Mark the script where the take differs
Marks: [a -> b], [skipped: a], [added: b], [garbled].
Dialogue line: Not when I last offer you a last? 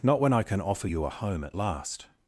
Not when I [last -> can] offer you a [added: home at] last?